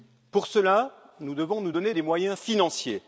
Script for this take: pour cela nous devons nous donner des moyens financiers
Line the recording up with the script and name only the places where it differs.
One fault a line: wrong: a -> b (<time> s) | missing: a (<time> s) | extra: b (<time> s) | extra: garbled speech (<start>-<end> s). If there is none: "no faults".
no faults